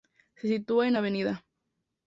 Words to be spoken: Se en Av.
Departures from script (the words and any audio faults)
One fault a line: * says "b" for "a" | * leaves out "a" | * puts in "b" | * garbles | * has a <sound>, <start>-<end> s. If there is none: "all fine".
* puts in "sitúa"